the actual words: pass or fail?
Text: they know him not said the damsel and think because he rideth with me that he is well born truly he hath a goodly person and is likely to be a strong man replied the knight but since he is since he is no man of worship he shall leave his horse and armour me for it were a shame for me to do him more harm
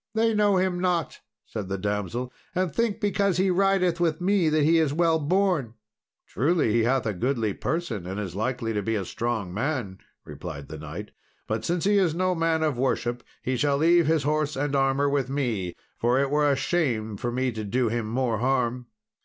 fail